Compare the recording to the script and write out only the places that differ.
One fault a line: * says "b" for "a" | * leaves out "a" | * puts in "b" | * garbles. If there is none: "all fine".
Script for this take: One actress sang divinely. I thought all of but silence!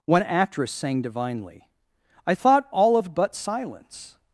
all fine